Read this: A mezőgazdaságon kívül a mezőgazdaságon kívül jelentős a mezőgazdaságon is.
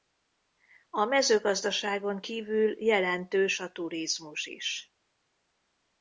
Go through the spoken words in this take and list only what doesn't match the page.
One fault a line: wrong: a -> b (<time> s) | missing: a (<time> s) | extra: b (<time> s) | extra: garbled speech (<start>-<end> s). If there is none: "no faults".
missing: a mezőgazdaságon kívül (2.8 s)
wrong: mezőgazdaságon -> turizmus (3.7 s)